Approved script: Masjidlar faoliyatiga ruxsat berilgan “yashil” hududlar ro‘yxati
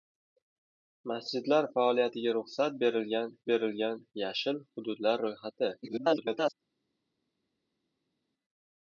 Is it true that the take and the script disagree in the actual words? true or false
true